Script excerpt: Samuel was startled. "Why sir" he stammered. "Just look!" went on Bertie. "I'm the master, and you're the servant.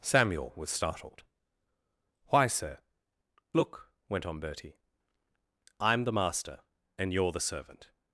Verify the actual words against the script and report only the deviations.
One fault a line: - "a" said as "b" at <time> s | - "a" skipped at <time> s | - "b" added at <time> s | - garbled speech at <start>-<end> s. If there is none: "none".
- "he stammered Just" skipped at 2.8 s